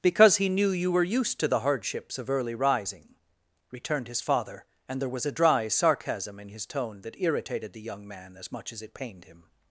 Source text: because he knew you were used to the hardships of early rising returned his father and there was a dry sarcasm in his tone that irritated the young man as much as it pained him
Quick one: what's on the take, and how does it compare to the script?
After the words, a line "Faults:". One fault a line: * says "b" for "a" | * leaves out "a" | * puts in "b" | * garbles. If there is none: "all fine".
because he knew you were used to the hardships of early rising returned his father and there was a dry sarcasm in his tone that irritated the young man as much as it pained him
Faults:
all fine